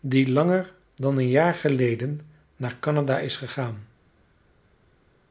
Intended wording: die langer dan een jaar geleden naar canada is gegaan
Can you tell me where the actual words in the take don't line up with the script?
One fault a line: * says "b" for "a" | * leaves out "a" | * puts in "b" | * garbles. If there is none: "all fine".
all fine